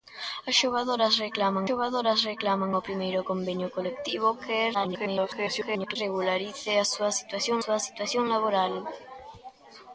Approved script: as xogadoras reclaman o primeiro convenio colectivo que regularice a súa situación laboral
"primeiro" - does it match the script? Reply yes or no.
yes